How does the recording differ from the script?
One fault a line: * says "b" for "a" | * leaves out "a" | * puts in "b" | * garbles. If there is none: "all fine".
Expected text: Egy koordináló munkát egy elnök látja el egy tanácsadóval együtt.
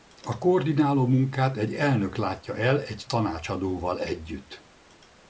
* says "A" for "Egy"